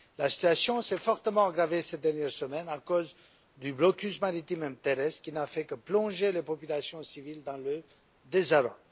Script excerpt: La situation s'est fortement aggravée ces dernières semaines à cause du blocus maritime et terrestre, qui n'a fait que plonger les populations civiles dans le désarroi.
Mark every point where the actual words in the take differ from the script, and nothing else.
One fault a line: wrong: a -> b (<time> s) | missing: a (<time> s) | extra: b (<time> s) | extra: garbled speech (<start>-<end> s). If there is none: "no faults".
no faults